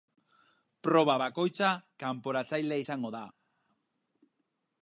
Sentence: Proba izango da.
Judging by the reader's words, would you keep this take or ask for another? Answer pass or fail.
fail